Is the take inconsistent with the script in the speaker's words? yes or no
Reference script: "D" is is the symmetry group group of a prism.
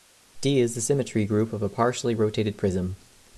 yes